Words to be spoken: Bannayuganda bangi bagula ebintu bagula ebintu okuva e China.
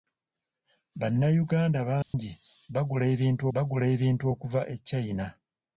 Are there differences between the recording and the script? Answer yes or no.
no